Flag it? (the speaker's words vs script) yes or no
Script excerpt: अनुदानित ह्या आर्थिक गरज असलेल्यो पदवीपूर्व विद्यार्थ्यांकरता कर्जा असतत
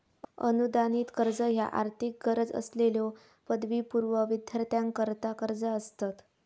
yes